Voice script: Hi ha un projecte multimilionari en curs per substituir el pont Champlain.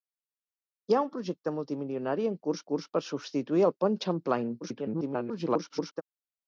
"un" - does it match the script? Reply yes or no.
yes